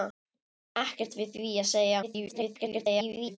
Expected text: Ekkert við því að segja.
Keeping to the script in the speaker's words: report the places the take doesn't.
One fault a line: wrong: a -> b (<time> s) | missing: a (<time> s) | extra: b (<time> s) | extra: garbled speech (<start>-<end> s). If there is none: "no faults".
extra: garbled speech (2.0-3.4 s)